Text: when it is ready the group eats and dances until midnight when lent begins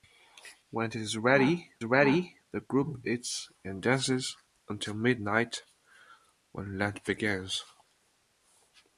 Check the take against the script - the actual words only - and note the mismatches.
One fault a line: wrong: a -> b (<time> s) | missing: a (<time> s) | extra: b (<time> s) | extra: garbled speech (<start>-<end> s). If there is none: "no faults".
extra: ready (1.8 s)